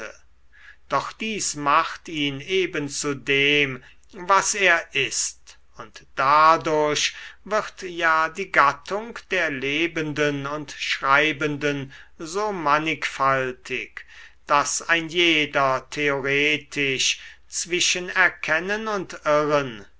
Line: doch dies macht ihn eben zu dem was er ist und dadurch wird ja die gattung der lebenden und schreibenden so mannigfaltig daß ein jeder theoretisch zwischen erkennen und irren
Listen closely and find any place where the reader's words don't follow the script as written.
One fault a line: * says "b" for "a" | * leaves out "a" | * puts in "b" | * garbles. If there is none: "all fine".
all fine